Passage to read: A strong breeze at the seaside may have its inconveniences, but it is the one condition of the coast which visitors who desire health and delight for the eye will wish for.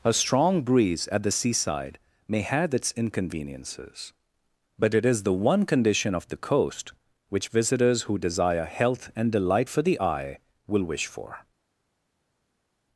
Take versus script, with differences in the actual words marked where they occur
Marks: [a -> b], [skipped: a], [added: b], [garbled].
A strong breeze at the seaside may have its inconveniences, but it is the one condition of the coast which visitors who desire health and delight for the eye will wish for.